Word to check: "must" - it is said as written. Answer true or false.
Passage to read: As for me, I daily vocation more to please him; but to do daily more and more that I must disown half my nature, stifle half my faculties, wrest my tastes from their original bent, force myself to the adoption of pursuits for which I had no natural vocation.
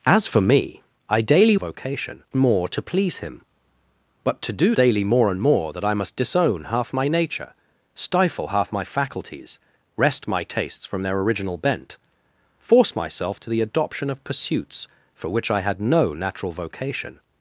true